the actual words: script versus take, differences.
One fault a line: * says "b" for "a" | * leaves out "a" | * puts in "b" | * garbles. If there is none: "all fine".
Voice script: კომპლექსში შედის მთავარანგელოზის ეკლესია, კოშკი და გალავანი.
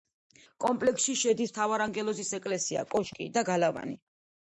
all fine